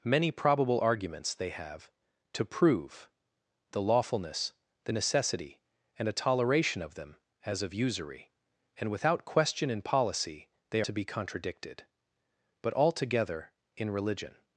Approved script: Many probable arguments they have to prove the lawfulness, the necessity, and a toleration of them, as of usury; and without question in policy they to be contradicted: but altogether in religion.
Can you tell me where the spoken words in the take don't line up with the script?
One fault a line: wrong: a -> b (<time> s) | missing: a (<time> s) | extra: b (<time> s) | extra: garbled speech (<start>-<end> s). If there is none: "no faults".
no faults